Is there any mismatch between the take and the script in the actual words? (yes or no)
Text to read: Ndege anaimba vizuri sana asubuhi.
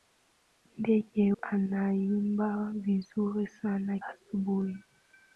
no